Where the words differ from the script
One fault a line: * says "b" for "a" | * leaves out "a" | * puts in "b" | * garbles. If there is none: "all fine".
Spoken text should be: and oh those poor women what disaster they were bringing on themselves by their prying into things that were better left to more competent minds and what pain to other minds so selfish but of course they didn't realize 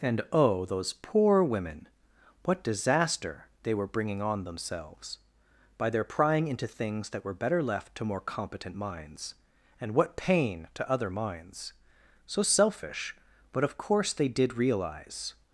* says "did" for "didn't"